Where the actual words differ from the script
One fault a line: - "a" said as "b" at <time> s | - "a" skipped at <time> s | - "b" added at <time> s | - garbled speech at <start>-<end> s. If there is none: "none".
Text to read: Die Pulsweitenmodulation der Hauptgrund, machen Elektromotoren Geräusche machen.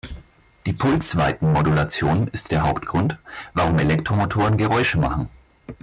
- "ist" added at 2.3 s
- "machen" said as "warum" at 3.5 s